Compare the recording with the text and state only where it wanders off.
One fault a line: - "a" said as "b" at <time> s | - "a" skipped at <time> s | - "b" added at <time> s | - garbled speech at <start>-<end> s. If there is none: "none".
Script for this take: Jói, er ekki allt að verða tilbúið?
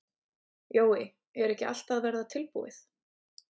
none